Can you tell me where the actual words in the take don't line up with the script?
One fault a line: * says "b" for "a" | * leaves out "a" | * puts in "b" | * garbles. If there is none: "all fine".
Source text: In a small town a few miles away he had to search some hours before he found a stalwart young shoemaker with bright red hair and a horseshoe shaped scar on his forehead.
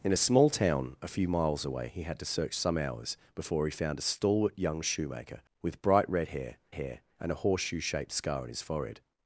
* puts in "hair"